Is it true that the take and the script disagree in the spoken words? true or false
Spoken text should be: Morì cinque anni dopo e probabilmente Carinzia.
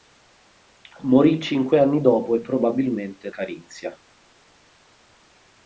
false